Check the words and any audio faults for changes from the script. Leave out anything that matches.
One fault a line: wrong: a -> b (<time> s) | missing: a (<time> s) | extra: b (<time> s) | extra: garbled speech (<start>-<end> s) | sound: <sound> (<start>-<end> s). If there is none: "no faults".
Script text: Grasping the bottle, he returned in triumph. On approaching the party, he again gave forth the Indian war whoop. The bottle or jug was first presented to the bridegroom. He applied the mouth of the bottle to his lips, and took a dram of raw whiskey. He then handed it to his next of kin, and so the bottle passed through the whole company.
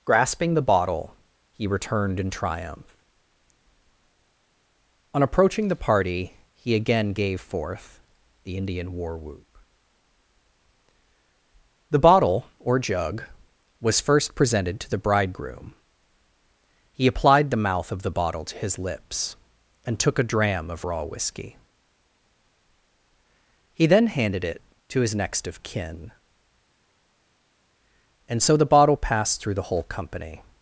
no faults